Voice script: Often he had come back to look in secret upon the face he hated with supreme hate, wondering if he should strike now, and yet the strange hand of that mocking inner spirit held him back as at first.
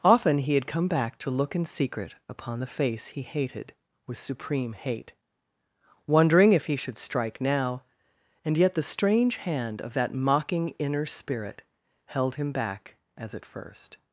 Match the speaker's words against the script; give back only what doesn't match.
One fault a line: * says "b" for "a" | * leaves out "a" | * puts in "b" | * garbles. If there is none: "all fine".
all fine